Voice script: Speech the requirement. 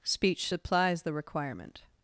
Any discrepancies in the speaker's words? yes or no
yes